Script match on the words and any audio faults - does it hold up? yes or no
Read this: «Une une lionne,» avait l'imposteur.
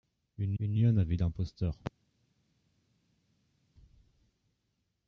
yes